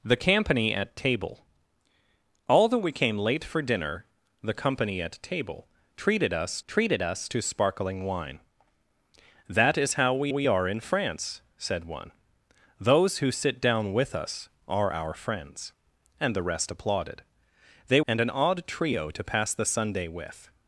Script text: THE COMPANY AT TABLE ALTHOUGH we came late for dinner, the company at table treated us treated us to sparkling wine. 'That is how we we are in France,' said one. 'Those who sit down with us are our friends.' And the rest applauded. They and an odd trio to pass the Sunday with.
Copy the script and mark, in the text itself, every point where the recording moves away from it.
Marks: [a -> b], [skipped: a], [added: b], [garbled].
THE COMPANY AT TABLE ALTHOUGH we came late for dinner, the company at table treated us treated us to sparkling wine. 'That is how we we are in France,' said one. 'Those who sit down with us are our friends.' And the rest applauded. They and an odd trio to pass the Sunday with.